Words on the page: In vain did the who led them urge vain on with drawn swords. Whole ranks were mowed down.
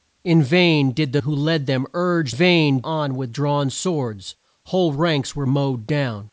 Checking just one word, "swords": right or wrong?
right